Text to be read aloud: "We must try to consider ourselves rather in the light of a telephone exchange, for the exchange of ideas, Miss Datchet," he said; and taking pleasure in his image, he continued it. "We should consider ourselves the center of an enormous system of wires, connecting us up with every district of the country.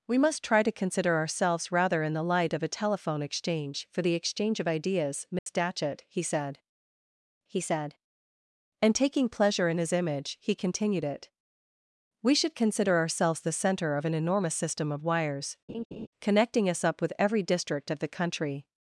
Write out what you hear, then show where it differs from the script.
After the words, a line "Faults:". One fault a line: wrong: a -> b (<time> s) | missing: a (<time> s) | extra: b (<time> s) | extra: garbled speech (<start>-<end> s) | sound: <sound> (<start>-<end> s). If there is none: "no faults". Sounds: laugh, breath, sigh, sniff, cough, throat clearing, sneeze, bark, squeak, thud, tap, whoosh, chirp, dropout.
"We must try to consider ourselves rather in the light of a telephone exchange, for the exchange of ideas, Miss Datchet," he said he said; and taking pleasure in his image, he continued it. "We should consider ourselves the center of an enormous system of wires, connecting us up with every district of the country.
Faults:
sound: dropout (5.4-5.5 s)
extra: he said (7.5 s)
sound: laugh (15.7-16.1 s)